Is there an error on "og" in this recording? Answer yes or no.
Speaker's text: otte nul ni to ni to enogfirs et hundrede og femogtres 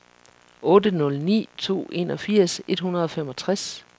no